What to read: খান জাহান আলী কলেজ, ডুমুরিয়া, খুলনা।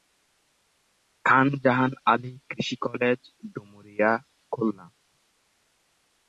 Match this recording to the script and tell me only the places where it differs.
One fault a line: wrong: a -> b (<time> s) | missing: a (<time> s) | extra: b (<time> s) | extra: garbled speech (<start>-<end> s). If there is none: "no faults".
extra: কৃষি (2.5 s)